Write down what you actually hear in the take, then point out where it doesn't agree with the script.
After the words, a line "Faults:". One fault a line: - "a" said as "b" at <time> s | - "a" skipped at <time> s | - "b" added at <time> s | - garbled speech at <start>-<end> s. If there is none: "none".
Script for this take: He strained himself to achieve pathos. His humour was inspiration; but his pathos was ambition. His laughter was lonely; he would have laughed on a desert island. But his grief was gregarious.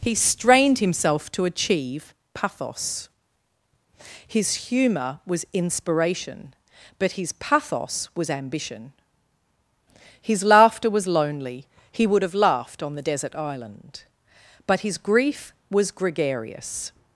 He strained himself to achieve pathos. His humour was inspiration; but his pathos was ambition. His laughter was lonely; he would have laughed on the desert island. But his grief was gregarious.
Faults:
- "a" said as "the" at 12.9 s